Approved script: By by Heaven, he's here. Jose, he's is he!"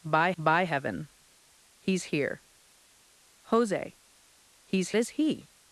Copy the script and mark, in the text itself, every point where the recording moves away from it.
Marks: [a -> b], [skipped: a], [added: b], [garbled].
By by Heaven, he's here. Jose, he's is he!"